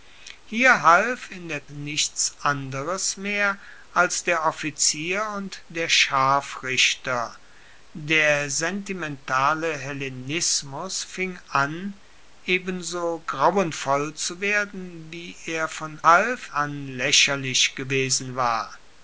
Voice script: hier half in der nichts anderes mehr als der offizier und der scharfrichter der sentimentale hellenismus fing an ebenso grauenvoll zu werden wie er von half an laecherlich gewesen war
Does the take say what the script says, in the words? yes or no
yes